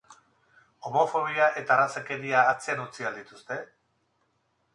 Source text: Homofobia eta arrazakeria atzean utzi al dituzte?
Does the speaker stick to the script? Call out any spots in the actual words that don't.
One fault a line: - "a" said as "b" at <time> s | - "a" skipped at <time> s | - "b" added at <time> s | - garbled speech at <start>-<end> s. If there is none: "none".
none